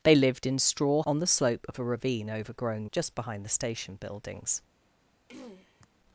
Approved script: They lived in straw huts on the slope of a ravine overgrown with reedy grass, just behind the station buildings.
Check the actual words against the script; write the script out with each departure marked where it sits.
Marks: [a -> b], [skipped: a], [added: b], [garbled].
They lived in straw [skipped: huts] on the slope of a ravine overgrown [skipped: with reedy grass,] just behind the station buildings.